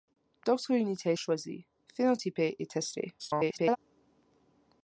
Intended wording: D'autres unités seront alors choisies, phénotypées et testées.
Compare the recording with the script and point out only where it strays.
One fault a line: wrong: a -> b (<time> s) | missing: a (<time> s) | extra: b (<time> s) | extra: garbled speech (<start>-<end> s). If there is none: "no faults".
missing: seront alors (1.1 s)
extra: garbled speech (3.2-3.8 s)